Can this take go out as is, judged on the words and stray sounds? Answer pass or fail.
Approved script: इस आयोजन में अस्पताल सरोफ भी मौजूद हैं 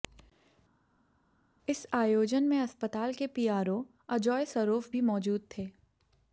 fail